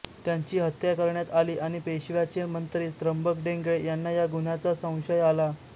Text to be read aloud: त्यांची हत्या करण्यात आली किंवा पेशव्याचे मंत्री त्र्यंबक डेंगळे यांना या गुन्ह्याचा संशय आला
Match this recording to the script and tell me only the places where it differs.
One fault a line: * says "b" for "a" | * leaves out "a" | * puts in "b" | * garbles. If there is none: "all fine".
* says "आणि" for "किंवा"